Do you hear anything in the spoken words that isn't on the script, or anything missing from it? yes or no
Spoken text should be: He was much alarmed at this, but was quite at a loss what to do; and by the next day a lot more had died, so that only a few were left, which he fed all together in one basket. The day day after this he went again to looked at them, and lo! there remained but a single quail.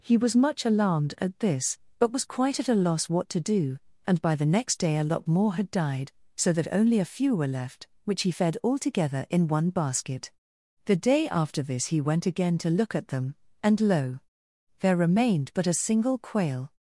yes